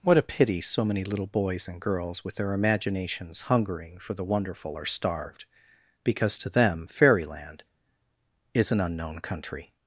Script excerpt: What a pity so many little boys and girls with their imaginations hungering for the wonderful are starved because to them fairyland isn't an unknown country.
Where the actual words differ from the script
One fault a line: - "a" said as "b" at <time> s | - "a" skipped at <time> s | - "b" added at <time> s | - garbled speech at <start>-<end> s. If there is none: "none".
- "isn't" said as "is" at 8.5 s